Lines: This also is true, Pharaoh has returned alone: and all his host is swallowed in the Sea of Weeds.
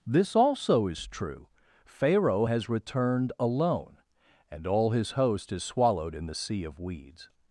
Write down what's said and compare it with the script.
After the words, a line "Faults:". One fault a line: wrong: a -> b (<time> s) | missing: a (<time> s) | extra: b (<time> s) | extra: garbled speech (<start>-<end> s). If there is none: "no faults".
This also is true, Pharaoh has returned alone: and all his host is swallowed in the Sea of Weeds.
Faults:
no faults